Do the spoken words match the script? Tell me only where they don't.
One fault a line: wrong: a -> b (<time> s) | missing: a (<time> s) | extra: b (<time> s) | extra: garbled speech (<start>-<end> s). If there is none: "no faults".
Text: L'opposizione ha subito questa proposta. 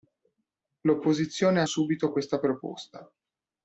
no faults